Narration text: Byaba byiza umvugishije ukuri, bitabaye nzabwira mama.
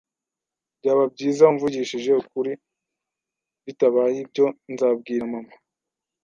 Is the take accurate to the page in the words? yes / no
no